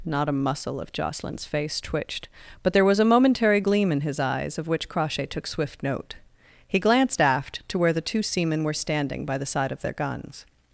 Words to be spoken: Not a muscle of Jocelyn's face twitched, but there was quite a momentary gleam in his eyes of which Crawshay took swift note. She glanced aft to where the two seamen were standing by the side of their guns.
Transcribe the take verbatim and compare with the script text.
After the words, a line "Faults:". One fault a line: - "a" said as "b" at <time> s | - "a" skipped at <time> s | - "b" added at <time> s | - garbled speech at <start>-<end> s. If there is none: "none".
Not a muscle of Jocelyn's face twitched, but there was a momentary gleam in his eyes of which Crawshay took swift note. He glanced aft to where the two seamen were standing by the side of their guns.
Faults:
- "quite" skipped at 3.0 s
- "She" said as "He" at 6.7 s